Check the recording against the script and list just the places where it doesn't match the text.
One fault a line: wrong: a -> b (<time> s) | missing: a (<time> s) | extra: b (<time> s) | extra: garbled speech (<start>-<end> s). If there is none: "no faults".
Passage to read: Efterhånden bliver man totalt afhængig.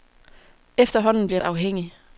missing: man totalt (1.4 s)